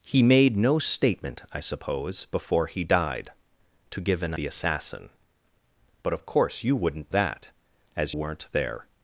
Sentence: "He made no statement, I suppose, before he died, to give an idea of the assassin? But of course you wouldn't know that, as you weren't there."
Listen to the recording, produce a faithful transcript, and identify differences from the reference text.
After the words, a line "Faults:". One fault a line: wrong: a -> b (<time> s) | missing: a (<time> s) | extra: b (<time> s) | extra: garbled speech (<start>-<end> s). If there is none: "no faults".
"He made no statement, I suppose, before he died, to give an the assassin? But of course you wouldn't that, as weren't there."
Faults:
missing: idea of (4.3 s)
missing: know (7.1 s)
missing: you (8.2 s)